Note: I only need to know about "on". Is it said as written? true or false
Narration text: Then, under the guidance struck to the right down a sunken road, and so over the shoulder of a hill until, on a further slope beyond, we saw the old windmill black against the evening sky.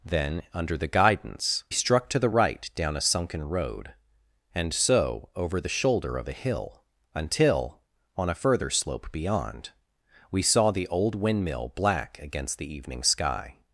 true